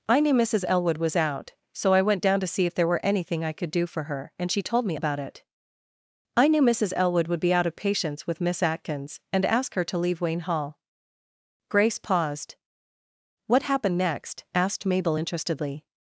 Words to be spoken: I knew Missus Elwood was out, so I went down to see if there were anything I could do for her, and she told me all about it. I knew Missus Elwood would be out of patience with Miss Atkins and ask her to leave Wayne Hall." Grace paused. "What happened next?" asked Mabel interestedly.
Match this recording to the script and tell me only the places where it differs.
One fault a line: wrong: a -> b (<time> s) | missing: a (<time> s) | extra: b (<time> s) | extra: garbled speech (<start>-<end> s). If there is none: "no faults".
missing: all (5.0 s)